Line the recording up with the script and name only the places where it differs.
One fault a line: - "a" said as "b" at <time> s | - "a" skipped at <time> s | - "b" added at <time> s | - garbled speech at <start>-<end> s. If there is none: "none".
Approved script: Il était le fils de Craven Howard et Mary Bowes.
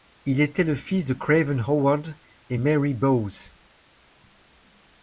none